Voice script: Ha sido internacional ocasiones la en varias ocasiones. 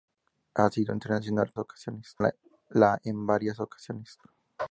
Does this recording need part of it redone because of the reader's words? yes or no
no